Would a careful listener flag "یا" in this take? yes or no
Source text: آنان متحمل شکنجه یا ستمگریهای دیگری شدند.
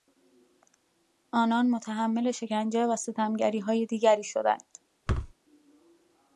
yes